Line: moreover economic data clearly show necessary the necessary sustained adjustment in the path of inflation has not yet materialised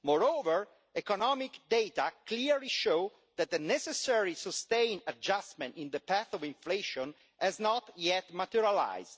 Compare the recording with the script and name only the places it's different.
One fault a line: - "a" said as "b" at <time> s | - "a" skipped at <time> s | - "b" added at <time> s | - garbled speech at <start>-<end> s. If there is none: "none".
- "necessary" said as "that" at 3.3 s